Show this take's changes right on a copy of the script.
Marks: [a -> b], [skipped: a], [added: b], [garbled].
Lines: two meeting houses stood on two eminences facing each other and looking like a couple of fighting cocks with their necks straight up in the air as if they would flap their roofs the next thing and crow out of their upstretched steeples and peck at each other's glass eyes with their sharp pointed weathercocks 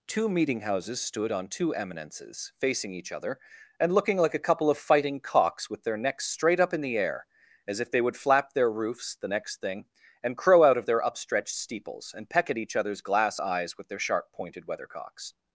two meeting houses stood on two eminences facing each other and looking like a couple of fighting cocks with their necks straight up in the air as if they would flap their roofs the next thing and crow out of their upstretched steeples and peck at each other's glass eyes with their sharp pointed weathercocks